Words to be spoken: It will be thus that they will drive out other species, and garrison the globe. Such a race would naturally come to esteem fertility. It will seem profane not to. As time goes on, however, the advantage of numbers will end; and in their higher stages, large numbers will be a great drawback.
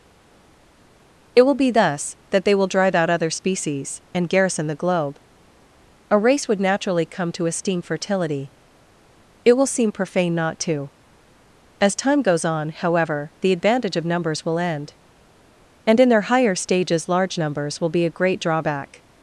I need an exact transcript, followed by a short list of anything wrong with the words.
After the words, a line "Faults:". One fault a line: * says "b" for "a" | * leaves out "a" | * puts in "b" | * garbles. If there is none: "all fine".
It will be thus that they will drive out other species, and garrison the globe. a race would naturally come to esteem fertility. It will seem profane not to. As time goes on, however, the advantage of numbers will end; and in their higher stages, large numbers will be a great drawback.
Faults:
* leaves out "Such"